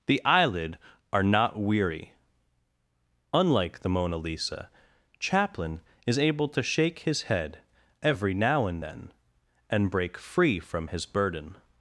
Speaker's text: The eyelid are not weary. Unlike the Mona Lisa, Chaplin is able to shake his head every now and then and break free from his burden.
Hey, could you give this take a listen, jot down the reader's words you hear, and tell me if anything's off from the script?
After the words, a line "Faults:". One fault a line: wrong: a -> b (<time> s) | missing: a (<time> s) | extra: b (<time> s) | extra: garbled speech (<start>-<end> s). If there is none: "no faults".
The eyelid are not weary. Unlike the Mona Lisa, Chaplin is able to shake his head every now and then and break free from his burden.
Faults:
no faults